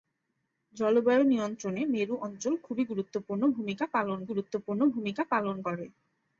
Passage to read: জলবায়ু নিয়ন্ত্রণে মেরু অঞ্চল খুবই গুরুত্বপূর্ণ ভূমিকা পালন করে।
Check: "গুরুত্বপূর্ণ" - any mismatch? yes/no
no